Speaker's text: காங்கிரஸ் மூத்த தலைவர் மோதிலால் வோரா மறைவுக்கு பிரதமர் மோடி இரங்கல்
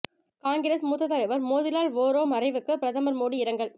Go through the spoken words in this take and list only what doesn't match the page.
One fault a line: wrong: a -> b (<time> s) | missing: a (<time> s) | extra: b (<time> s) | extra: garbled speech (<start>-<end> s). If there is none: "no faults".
no faults